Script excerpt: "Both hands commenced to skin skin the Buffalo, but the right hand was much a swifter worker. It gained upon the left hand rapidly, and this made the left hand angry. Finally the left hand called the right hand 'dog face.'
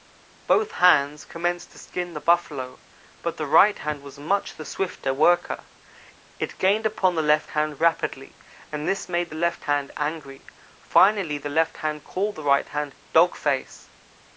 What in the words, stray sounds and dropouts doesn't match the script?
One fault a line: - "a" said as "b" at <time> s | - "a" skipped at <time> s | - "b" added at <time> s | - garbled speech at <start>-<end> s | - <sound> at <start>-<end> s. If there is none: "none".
- "skin" skipped at 2.1 s
- "a" said as "the" at 4.5 s